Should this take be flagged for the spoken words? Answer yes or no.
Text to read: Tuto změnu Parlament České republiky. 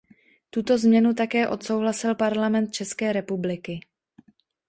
yes